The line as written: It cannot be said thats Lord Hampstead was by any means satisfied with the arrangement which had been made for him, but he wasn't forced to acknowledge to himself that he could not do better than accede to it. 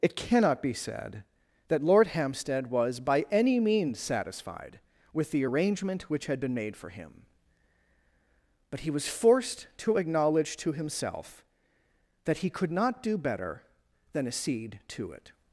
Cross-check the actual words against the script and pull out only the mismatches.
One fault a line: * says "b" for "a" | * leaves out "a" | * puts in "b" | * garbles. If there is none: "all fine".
* says "that" for "thats"
* says "was" for "wasn't"